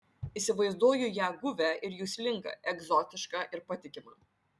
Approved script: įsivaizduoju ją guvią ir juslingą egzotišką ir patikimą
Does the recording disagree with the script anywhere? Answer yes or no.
no